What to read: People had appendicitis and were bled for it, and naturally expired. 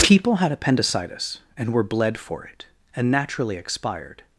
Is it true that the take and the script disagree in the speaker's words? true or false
false